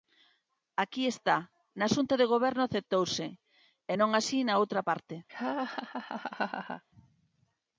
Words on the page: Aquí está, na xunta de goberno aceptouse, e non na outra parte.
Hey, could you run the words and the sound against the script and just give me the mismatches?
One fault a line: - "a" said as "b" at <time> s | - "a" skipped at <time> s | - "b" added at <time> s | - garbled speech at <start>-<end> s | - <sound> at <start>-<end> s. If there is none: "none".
- "así" added at 4.2 s
- laugh at 5.3-6.8 s